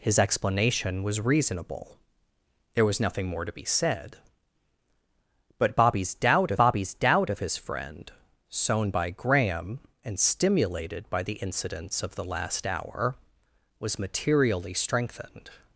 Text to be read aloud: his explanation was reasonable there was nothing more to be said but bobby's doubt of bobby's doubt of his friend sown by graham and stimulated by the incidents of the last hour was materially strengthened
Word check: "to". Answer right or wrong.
right